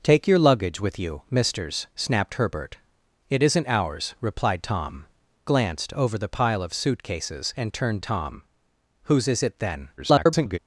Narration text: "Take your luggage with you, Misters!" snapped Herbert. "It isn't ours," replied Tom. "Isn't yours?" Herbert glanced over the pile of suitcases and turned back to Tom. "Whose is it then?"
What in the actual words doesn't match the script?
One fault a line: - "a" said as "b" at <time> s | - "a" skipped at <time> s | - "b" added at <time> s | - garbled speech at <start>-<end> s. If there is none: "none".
- "Isn't yours Herbert" skipped at 5.0 s
- "back to" skipped at 8.0 s
- garbled speech at 10.0-10.6 s